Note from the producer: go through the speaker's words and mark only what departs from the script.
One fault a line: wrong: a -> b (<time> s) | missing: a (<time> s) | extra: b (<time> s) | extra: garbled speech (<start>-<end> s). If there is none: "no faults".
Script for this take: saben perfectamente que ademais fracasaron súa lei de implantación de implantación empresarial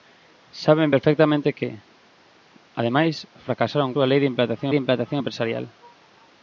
no faults